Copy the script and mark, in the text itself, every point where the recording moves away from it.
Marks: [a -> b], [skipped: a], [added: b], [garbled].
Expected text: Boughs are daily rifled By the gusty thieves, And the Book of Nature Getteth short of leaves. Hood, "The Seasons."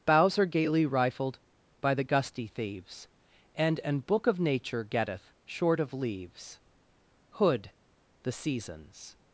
Boughs are [daily -> gaily] rifled By the gusty thieves, And [the -> an] Book of Nature Getteth short of leaves. Hood, "The Seasons."